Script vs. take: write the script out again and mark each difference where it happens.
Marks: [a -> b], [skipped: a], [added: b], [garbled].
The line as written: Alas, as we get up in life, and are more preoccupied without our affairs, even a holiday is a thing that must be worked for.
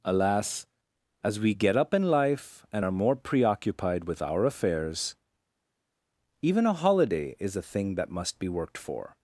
Alas, as we get up in life, and are more preoccupied [without -> with] our affairs, even a holiday is a thing that must be worked for.